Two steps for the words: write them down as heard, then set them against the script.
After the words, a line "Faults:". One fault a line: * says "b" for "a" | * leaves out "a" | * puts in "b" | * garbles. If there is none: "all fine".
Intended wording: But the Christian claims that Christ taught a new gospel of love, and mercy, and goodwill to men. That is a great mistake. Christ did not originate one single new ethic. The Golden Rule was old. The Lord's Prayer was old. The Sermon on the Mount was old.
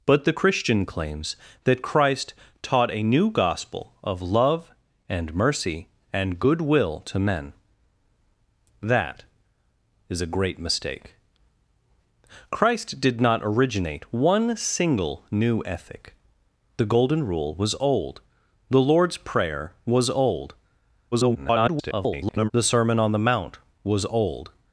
But the Christian claims that Christ taught a new gospel of love, and mercy, and goodwill to men. That is a great mistake. Christ did not originate one single new ethic. The Golden Rule was old. The Lord's Prayer was old. [garbled] The Sermon on the Mount was old.
Faults:
* garbles